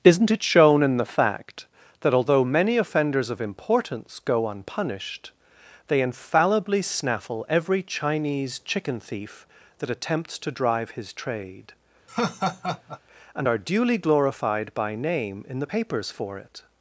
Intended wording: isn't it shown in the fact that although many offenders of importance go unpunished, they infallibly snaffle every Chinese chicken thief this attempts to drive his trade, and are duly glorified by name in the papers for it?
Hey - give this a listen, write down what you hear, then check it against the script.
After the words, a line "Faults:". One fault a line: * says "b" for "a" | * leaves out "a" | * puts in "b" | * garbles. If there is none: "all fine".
isn't it shown in the fact that although many offenders of importance go unpunished, they infallibly snaffle every Chinese chicken thief that attempts to drive his trade, and are duly glorified by name in the papers for it?
Faults:
* says "that" for "this"